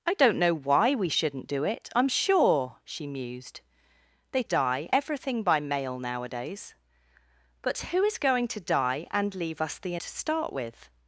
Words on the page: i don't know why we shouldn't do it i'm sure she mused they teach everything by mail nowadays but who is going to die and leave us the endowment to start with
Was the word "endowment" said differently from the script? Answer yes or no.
yes